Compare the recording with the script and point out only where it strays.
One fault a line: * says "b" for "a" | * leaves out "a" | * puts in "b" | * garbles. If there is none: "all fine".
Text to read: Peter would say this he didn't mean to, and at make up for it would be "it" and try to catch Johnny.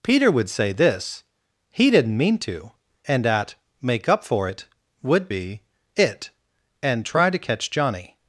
all fine